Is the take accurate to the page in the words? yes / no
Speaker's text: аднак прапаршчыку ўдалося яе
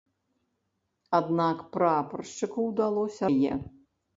yes